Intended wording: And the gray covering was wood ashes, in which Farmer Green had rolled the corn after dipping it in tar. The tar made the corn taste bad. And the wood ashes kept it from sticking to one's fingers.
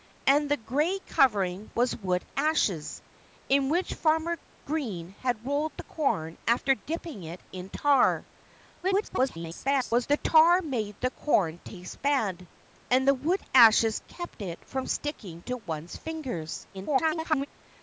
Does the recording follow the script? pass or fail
fail